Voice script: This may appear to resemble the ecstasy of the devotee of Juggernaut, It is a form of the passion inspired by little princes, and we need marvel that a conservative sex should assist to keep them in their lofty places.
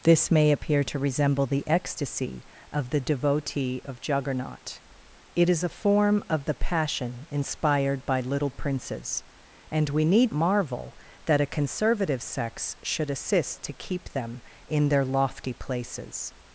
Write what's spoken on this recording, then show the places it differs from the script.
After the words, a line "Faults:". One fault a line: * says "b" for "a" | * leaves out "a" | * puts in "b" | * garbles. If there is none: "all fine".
This may appear to resemble the ecstasy of the devotee of Juggernaut, It is a form of the passion inspired by little princes, and we need marvel that a conservative sex should assist to keep them in their lofty places.
Faults:
all fine